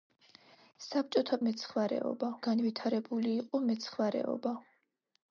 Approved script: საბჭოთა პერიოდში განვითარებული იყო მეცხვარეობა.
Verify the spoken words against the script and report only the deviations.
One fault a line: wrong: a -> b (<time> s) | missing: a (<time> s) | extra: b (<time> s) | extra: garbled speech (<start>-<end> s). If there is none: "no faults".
wrong: პერიოდში -> მეცხვარეობა (1.5 s)